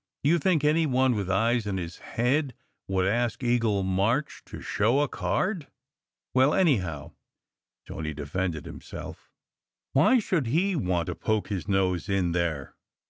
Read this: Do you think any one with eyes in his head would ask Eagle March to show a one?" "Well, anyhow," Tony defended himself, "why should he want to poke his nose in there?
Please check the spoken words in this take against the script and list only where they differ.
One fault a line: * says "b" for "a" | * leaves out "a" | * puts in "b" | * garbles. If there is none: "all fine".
* says "card" for "one"